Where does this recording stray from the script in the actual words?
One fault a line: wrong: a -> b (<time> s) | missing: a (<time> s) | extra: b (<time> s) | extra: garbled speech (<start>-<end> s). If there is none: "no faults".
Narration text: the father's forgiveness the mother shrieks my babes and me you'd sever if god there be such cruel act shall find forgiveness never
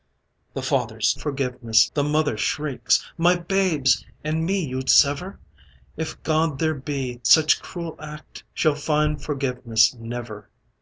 no faults